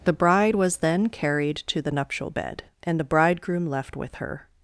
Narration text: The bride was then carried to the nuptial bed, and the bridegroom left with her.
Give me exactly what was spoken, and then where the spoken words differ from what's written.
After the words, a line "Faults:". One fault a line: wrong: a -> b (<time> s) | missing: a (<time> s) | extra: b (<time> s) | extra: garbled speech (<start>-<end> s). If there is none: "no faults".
The bride was then carried to the nuptial bed, and the bridegroom left with her.
Faults:
no faults